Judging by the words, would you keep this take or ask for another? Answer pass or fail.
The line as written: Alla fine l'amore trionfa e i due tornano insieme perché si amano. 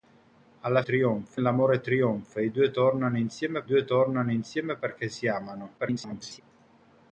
fail